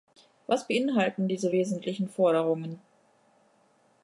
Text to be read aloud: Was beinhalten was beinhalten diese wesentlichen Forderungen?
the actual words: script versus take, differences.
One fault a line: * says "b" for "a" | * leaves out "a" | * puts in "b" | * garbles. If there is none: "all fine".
* leaves out "was beinhalten"